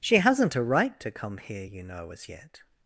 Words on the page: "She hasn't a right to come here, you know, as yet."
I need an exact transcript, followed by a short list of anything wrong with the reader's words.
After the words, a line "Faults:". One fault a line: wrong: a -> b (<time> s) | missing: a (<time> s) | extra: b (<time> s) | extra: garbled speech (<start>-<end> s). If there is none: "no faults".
"She hasn't a right to come here, you know, as yet."
Faults:
no faults